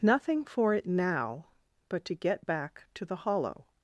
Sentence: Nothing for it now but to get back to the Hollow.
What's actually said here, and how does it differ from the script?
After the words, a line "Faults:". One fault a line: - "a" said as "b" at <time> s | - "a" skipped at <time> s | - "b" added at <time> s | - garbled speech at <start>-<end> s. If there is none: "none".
Nothing for it now but to get back to the Hollow.
Faults:
none